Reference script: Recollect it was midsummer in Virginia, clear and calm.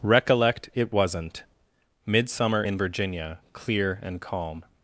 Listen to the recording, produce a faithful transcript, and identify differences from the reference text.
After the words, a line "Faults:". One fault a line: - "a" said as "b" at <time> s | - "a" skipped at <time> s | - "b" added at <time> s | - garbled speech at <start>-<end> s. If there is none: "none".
Recollect it wasn't midsummer in Virginia, clear and calm.
Faults:
- "was" said as "wasn't" at 0.9 s